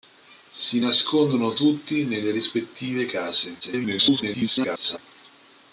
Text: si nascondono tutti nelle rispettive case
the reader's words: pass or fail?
fail